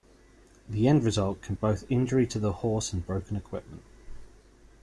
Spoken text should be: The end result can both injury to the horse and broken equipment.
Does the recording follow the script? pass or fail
pass